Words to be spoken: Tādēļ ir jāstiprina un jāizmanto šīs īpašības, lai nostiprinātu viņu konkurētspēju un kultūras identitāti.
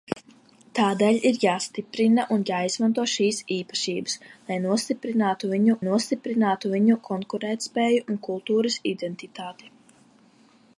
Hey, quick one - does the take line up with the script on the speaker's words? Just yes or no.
no